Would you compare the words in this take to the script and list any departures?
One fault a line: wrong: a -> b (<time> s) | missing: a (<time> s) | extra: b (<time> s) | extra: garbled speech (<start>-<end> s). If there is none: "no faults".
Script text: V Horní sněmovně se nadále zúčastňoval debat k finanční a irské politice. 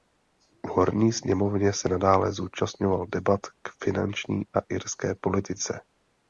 no faults